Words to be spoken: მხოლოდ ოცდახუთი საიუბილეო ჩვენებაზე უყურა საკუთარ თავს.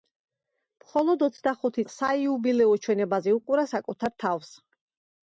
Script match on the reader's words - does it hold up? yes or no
yes